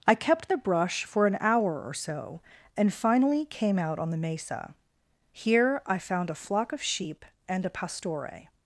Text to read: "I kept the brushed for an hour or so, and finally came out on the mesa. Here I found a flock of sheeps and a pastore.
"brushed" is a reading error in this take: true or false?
true